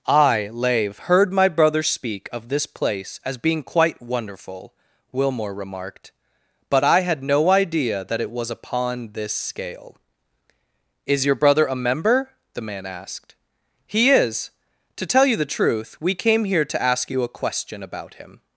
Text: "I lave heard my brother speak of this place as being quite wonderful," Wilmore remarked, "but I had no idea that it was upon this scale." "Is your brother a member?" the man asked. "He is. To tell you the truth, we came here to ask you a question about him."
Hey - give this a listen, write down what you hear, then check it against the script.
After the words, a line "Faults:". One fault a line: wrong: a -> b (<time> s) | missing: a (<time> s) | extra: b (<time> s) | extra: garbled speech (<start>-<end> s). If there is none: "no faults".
"I lave heard my brother speak of this place as being quite wonderful," Wilmore remarked, "but I had no idea that it was upon this scale." "Is your brother a member?" the man asked. "He is. To tell you the truth, we came here to ask you a question about him."
Faults:
no faults